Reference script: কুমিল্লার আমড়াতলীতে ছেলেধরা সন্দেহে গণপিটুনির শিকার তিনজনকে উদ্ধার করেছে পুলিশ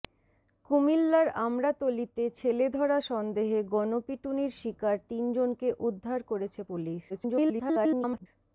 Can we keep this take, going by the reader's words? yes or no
no